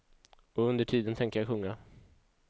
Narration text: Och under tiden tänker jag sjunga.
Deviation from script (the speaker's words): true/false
false